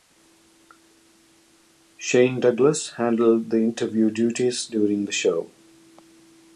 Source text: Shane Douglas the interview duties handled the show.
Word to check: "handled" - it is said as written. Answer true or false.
false